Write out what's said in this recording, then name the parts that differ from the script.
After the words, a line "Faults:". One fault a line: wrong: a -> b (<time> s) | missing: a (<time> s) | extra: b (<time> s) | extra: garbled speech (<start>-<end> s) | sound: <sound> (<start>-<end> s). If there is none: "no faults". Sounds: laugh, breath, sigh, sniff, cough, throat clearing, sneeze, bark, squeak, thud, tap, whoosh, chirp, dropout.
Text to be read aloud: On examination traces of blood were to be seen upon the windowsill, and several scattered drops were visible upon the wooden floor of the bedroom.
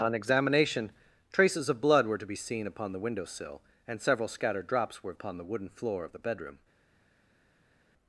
On examination traces of blood were to be seen upon the windowsill, and several scattered drops were upon the wooden floor of the bedroom.
Faults:
missing: visible (5.1 s)